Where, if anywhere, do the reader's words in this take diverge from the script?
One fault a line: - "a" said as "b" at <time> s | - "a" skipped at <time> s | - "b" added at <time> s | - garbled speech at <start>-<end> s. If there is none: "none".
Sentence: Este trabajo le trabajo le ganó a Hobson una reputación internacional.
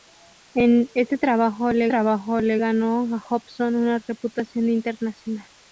none